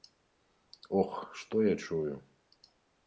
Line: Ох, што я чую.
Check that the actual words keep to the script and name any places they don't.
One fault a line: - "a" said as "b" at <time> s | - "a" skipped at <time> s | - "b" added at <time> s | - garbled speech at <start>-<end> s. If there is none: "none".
none